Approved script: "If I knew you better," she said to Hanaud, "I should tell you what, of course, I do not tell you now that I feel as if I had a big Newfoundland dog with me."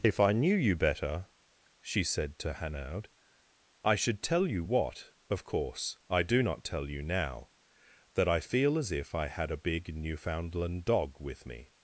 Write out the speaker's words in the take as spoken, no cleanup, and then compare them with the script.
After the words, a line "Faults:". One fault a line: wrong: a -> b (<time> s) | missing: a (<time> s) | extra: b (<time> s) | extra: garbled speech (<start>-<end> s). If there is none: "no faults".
"If I knew you better," she said to Hanaud, "I should tell you what, of course, I do not tell you now that I feel as if I had a big Newfoundland dog with me."
Faults:
no faults